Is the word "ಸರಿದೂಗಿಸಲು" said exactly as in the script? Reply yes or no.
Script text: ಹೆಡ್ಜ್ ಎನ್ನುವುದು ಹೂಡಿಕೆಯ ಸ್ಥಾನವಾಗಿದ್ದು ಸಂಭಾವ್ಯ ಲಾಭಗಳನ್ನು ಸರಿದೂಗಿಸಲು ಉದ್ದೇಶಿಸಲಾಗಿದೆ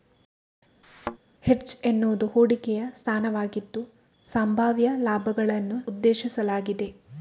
no